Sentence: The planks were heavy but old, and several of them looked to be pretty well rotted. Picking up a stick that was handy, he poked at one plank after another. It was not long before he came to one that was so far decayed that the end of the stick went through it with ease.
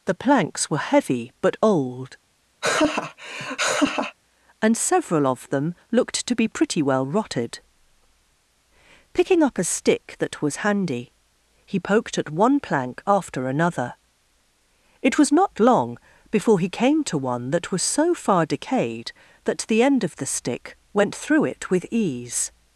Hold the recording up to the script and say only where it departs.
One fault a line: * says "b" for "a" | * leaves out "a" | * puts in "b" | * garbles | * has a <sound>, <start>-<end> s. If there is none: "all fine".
* has a laugh, 2.6-4.2 s